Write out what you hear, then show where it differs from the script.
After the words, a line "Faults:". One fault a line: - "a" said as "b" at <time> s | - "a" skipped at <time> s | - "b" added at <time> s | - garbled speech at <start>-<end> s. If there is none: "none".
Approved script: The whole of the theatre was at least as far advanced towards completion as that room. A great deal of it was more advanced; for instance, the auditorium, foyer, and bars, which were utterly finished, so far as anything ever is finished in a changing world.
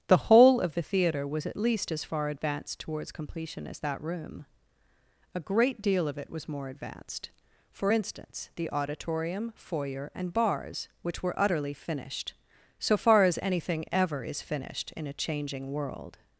The whole of the theatre was at least as far advanced towards completion as that room. A great deal of it was more advanced; for instance, the auditorium, foyer, and bars, which were utterly finished, so far as anything ever is finished in a changing world.
Faults:
none